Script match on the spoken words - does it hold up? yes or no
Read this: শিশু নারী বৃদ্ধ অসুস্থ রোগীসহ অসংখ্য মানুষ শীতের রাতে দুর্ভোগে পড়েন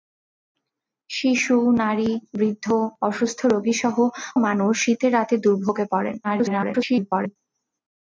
no